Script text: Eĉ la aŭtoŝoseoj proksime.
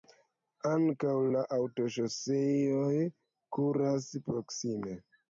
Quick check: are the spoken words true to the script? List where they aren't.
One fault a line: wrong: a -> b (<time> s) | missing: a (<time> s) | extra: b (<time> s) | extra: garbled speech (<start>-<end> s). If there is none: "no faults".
wrong: Eĉ -> Ankaŭ (0.7 s)
extra: kuras (3.6 s)